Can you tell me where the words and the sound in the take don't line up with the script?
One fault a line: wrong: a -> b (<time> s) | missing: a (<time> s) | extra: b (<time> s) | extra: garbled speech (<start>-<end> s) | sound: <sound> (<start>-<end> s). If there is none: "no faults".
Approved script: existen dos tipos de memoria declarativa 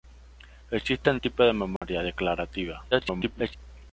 missing: dos (1.2 s)
sound: dropout (1.8-1.8 s)
extra: garbled speech (2.9-3.6 s)